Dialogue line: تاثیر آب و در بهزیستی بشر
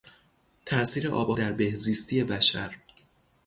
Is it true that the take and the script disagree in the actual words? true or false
false